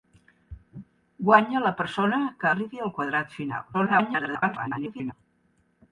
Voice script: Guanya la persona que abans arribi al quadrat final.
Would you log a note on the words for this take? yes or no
yes